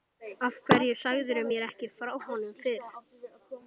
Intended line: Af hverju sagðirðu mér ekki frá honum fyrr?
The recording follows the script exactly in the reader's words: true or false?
true